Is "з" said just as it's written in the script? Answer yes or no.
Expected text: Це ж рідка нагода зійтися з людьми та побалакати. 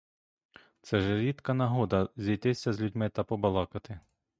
yes